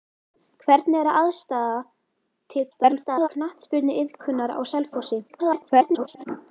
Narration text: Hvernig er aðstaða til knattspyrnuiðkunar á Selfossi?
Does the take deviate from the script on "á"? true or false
false